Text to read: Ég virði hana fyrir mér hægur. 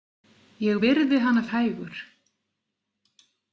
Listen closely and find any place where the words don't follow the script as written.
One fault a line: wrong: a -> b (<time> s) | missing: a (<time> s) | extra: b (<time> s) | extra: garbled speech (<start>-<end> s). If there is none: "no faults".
missing: fyrir mér (1.4 s)